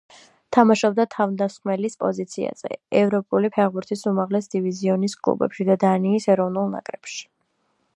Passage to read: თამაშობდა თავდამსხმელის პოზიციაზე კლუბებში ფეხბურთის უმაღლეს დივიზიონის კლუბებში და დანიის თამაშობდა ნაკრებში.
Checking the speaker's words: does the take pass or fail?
fail